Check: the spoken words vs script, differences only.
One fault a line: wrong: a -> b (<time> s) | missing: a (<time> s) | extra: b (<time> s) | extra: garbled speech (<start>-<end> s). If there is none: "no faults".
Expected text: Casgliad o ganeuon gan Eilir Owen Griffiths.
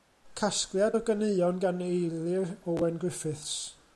no faults